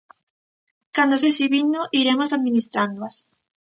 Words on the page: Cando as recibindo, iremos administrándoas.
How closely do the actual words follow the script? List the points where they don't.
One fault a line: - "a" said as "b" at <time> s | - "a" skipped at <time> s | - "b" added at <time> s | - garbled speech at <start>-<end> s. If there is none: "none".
none